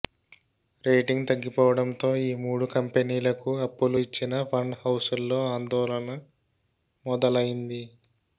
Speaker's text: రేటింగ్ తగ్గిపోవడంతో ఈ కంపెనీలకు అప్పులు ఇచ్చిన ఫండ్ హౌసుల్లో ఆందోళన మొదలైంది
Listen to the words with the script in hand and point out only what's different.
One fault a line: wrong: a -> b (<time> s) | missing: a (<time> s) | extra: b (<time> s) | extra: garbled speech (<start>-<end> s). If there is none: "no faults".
extra: మూడు (2.4 s)